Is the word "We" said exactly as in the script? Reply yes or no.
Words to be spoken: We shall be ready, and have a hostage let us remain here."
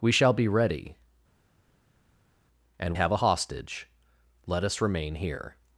yes